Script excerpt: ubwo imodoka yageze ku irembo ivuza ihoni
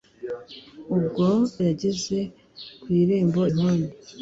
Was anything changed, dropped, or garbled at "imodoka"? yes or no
yes